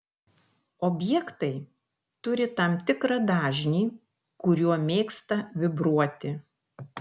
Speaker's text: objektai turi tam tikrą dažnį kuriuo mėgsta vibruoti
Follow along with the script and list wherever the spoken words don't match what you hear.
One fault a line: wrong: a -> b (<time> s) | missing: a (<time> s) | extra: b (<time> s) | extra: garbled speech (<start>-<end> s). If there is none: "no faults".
no faults